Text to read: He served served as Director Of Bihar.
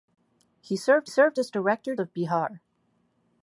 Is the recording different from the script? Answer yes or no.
no